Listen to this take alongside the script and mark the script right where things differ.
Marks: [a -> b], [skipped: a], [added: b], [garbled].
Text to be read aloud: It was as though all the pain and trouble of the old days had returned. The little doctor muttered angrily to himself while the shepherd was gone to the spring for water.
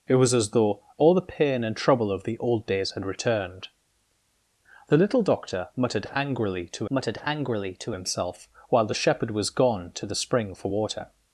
It was as though all the pain and trouble of the old days had returned. The little doctor muttered angrily to [added: muttered angrily to] himself while the shepherd was gone to the spring for water.